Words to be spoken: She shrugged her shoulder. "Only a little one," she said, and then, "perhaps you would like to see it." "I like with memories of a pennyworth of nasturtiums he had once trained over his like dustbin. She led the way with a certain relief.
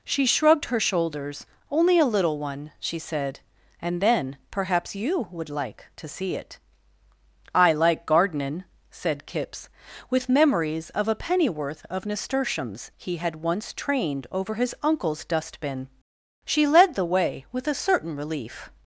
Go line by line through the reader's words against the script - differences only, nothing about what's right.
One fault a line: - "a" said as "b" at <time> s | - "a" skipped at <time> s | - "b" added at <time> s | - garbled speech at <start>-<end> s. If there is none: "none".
- "shoulder" said as "shoulders" at 0.8 s
- "gardenin said Kipps" added at 8.1 s
- "like" said as "uncle's" at 14.8 s